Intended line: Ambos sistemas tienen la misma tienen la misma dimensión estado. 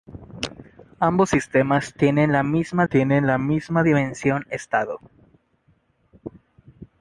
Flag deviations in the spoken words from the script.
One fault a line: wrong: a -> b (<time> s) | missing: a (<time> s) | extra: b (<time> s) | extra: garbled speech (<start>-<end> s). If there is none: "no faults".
no faults